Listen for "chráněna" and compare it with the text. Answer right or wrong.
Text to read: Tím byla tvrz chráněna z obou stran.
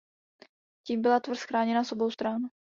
right